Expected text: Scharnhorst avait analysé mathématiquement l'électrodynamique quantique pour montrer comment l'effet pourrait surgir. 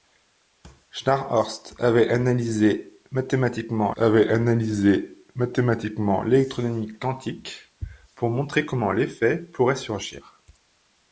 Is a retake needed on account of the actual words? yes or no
yes